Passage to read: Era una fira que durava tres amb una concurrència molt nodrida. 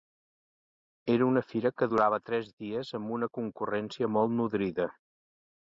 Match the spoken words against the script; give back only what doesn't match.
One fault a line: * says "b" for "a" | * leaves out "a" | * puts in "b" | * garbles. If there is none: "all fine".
* puts in "dies"